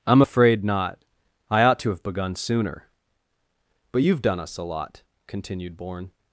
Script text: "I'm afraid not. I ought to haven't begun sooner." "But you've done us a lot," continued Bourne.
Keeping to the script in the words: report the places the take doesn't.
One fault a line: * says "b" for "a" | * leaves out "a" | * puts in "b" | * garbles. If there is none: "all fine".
* says "have" for "haven't"